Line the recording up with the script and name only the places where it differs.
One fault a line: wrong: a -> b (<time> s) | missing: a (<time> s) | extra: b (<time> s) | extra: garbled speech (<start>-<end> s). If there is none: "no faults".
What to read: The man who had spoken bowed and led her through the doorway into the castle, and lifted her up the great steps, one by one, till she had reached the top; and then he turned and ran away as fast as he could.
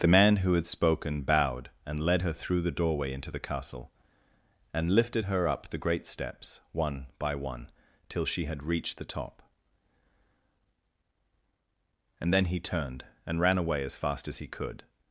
no faults